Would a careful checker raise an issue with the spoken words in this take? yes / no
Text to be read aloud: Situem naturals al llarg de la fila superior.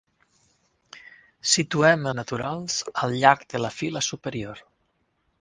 no